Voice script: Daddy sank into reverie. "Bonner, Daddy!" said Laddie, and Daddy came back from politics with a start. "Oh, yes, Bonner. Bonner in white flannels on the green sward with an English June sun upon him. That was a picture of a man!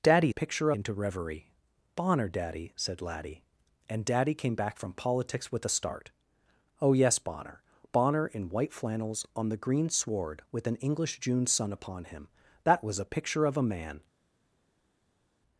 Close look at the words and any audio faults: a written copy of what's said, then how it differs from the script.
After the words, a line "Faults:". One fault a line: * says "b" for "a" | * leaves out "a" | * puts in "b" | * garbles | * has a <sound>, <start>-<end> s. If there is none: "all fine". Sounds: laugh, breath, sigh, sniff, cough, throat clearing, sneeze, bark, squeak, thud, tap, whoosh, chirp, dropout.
Daddy picture into reverie. "Bonner, Daddy!" said Laddie, and Daddy came back from politics with a start. "Oh, yes, Bonner. Bonner in white flannels on the green sward with an English June sun upon him. That was a picture of a man!
Faults:
* says "picture" for "sank"